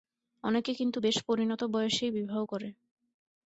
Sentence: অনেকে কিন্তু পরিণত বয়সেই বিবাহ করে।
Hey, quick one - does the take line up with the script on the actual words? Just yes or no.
no